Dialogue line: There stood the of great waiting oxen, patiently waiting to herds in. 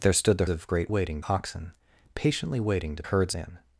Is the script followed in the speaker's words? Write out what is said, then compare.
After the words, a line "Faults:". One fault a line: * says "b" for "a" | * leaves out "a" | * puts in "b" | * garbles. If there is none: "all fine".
There stood the of great waiting oxen, patiently waiting to herds in.
Faults:
all fine